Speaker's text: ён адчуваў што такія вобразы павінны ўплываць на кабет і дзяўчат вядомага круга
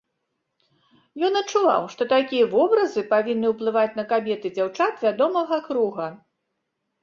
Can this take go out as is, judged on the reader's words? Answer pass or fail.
pass